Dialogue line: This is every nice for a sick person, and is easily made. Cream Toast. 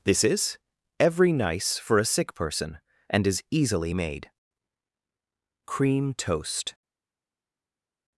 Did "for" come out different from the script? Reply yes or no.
no